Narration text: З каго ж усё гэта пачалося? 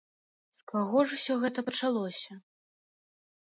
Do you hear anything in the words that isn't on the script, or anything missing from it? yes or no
no